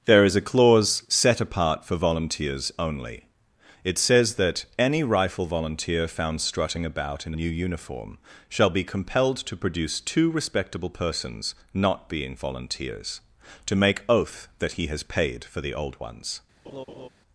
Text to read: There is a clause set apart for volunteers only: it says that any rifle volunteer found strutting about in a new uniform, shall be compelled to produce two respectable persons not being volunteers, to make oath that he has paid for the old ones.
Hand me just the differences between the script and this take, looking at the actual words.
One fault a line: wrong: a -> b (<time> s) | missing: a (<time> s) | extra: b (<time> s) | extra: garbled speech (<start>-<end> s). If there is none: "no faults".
missing: a (7.3 s)